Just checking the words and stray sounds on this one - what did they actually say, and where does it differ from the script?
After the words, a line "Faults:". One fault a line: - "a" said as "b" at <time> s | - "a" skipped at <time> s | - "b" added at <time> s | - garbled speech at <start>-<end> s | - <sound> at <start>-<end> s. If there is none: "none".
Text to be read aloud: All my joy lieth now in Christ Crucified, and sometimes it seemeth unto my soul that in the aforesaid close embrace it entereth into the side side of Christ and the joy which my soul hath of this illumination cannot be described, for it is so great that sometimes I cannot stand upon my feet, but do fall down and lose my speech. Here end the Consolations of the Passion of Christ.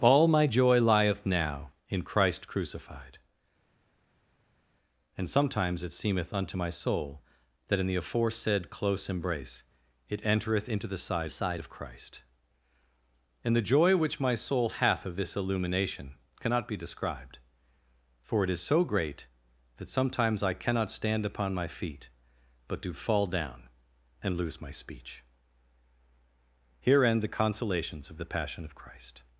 All my joy lieth now in Christ Crucified, and sometimes it seemeth unto my soul that in the aforesaid close embrace it entereth into the side side of Christ and the joy which my soul hath of this illumination cannot be described, for it is so great that sometimes I cannot stand upon my feet, but do fall down and lose my speech. Here end the Consolations of the Passion of Christ.
Faults:
none